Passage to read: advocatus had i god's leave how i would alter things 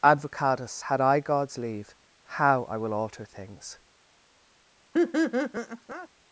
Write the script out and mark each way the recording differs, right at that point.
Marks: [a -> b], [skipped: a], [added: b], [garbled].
advocatus had i god's leave how i [would -> will] alter things